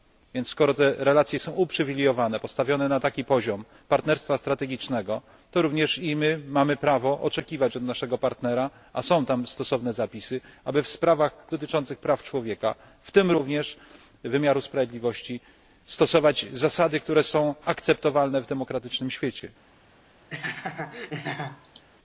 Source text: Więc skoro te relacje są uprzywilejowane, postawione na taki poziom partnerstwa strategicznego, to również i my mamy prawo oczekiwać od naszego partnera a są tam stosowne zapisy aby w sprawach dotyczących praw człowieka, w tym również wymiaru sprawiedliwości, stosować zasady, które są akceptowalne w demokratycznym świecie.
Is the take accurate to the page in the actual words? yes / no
yes